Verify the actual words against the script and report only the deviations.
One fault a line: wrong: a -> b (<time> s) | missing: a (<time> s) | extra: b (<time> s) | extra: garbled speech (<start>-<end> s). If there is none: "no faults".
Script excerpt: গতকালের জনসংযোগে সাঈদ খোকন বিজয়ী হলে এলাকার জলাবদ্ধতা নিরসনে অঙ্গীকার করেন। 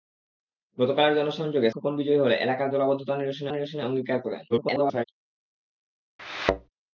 missing: সাঈদ (1.7 s)
extra: নিরসনে (3.5 s)
extra: garbled speech (4.5-5.0 s)